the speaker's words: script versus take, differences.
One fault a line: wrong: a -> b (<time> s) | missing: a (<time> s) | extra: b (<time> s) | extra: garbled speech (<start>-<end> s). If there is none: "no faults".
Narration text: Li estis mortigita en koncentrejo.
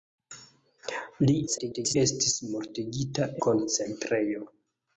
extra: garbled speech (1.5-2.0 s)
missing: en (3.3 s)